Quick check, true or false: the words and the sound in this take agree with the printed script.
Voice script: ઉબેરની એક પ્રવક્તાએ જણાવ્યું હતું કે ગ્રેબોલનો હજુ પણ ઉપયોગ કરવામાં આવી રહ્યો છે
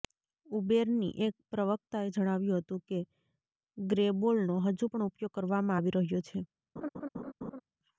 false